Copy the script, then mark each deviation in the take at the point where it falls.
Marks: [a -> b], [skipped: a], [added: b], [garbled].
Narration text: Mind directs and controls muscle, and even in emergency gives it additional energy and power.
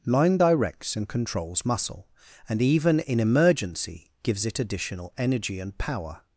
[Mind -> Line] directs and controls muscle, and even in emergency gives it additional energy and power.